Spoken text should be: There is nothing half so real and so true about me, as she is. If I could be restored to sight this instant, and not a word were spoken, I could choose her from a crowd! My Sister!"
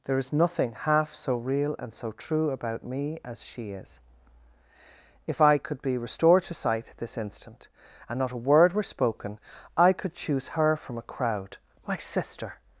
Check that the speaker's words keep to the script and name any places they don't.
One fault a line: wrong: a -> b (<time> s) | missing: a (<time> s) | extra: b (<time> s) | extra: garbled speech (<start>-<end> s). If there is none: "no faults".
no faults